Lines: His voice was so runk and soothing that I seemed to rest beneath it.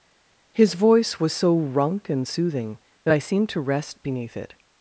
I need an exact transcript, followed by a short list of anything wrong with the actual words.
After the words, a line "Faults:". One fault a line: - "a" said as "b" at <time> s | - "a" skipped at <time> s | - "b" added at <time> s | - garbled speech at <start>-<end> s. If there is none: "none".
His voice was so runk and soothing that I seemed to rest beneath it.
Faults:
none